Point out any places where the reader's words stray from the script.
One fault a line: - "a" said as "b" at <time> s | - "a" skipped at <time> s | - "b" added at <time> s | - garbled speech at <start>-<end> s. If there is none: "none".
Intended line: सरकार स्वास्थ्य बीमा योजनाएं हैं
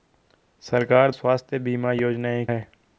none